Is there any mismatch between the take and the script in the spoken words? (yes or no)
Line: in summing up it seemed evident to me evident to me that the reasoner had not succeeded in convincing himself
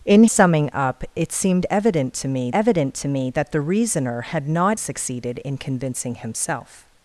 no